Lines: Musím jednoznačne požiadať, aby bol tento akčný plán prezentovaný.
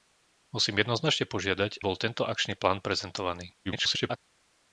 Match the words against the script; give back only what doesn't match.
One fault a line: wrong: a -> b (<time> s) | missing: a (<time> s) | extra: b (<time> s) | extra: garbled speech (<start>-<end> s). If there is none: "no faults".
missing: aby (1.9 s)
extra: garbled speech (3.6-4.2 s)